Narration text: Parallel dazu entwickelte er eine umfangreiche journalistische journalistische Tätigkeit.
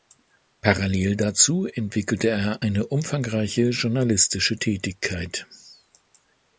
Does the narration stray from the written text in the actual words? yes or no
yes